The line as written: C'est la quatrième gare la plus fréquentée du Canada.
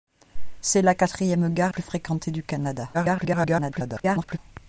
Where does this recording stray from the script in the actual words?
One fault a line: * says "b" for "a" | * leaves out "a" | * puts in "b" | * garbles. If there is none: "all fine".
* leaves out "la"
* garbles